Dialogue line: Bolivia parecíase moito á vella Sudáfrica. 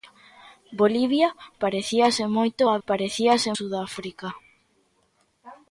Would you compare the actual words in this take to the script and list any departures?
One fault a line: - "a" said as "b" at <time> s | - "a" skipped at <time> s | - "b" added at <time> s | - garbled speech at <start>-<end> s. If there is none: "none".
- "vella" said as "parecíase" at 2.9 s